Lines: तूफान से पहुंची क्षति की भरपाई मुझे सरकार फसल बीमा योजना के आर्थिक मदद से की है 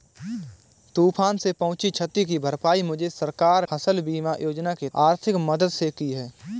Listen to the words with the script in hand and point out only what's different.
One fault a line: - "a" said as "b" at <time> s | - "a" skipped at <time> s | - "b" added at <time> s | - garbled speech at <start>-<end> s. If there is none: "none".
none